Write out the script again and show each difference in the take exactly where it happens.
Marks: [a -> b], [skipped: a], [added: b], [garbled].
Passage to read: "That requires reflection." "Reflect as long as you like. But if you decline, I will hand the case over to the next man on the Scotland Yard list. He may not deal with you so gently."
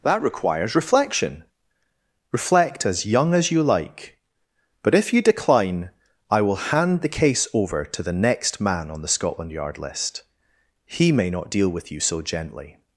"That requires reflection." "Reflect as [long -> young] as you like. But if you decline, I will hand the case over to the next man on the Scotland Yard list. He may not deal with you so gently."